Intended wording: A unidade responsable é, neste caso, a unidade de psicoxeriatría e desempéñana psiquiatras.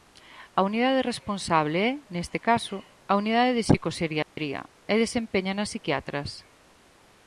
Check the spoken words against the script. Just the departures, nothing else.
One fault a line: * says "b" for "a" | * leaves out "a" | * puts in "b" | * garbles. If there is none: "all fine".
all fine